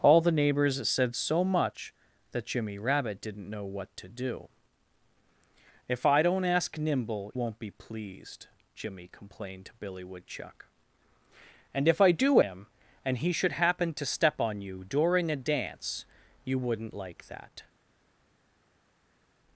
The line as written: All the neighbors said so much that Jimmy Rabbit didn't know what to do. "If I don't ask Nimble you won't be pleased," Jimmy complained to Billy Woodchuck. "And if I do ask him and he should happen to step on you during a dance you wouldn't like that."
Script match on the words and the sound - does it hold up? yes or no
no